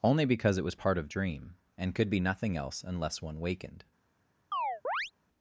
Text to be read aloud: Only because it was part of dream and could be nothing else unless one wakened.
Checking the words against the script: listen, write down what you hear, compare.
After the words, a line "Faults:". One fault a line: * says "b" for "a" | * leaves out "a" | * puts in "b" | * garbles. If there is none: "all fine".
Only because it was part of dream and could be nothing else unless one wakened.
Faults:
all fine